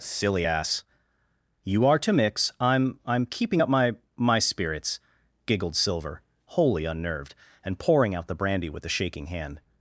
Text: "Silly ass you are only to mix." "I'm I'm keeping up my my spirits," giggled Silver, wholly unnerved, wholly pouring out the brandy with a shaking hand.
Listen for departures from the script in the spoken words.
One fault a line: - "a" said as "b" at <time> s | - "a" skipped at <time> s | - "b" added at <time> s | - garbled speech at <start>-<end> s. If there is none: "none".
- "only" skipped at 2.0 s
- "wholly" said as "and" at 7.6 s